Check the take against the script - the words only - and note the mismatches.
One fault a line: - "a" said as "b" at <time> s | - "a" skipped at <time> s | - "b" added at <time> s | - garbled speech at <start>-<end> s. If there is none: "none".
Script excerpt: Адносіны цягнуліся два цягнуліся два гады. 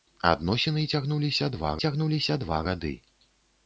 none